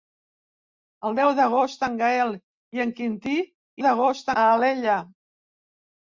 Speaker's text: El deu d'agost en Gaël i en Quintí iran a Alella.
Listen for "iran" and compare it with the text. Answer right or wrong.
wrong